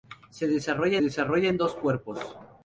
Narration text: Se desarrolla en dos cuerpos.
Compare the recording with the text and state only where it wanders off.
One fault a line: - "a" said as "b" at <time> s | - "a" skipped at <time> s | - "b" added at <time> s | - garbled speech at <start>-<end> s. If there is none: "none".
- "desarrolla" added at 1.0 s